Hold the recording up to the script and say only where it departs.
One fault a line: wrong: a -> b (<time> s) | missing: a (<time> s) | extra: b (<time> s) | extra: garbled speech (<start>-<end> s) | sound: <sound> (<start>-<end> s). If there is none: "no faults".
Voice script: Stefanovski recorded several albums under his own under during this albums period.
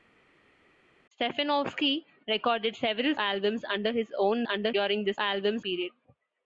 no faults